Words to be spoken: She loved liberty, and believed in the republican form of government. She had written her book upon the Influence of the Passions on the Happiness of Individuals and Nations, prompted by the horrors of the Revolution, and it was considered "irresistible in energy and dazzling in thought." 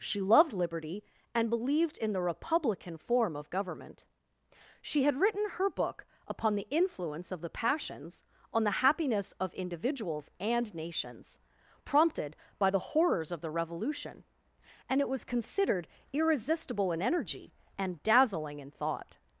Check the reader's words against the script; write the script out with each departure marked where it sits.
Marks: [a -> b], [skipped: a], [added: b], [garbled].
She loved liberty, and believed in the republican form of government. She had written her book upon the Influence of the Passions on the Happiness of Individuals and Nations, prompted by the horrors of the Revolution, and it was considered "irresistible in energy and dazzling in thought."